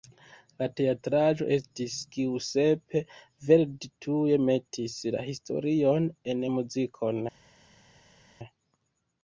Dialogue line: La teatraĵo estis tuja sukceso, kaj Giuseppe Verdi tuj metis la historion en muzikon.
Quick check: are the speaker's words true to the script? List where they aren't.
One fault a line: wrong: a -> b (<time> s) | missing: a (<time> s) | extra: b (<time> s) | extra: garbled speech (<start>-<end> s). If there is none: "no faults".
missing: tuja sukceso kaj (2.0 s)